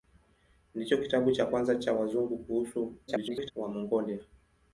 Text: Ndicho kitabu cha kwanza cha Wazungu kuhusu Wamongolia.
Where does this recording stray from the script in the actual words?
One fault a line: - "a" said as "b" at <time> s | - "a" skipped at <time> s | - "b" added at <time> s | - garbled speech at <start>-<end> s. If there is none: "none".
- garbled speech at 3.1-3.5 s